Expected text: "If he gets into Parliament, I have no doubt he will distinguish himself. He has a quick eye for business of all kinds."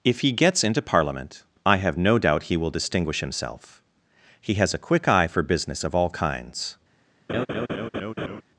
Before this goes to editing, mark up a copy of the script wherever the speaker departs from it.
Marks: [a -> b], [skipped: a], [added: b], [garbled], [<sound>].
"If he gets into Parliament, I have no doubt he will distinguish himself. He has a quick eye for business of all kinds." [laugh]